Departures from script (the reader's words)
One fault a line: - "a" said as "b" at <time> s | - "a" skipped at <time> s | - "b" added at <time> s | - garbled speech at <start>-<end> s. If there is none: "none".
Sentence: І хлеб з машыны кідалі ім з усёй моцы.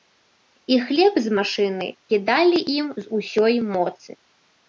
none